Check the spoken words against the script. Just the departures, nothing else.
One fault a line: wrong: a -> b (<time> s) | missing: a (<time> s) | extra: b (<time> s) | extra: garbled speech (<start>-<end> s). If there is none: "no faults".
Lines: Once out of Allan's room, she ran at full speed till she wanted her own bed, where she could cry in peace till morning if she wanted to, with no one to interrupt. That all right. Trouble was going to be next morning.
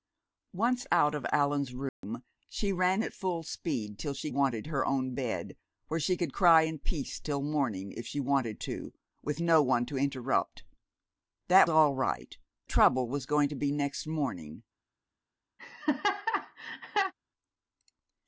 no faults